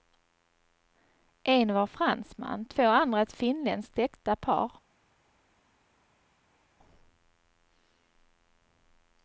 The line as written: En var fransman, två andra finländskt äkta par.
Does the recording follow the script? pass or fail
fail